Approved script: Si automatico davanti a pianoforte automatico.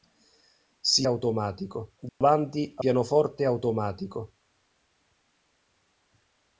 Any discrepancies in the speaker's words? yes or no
no